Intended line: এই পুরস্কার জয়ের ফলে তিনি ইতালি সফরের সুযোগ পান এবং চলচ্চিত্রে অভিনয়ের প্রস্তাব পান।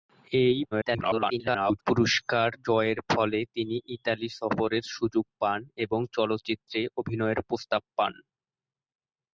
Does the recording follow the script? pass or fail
fail